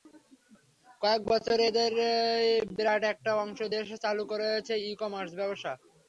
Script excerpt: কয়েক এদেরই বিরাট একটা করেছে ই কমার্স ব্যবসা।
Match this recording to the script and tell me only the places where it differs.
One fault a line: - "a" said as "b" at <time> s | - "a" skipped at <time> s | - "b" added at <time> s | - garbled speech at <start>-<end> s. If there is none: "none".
- "বছরে" added at 1.3 s
- "অংশ দেশে চালু" added at 3.4 s